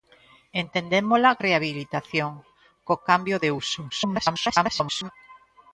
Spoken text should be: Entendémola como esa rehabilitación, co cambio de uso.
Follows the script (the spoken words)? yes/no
no